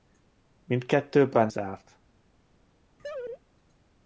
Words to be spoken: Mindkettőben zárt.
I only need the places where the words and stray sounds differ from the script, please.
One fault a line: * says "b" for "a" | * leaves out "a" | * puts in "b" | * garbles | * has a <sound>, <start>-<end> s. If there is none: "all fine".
* has a laugh, 3.0-3.4 s